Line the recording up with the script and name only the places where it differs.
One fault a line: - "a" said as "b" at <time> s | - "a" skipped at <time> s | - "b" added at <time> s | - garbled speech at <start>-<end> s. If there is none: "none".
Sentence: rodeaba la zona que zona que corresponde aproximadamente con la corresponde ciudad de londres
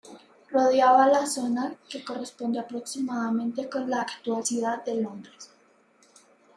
- "zona que" skipped at 2.0 s
- "corresponde" said as "actual" at 4.0 s